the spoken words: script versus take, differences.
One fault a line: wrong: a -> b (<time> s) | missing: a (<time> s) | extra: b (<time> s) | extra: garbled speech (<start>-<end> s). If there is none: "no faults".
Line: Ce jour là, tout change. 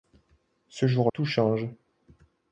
missing: là (1.1 s)